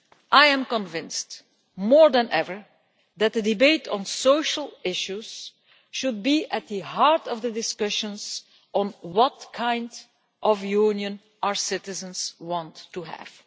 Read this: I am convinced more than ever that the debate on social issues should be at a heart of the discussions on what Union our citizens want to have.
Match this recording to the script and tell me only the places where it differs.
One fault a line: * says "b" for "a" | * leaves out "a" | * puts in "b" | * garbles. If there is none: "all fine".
* says "the" for "a"
* puts in "kind of"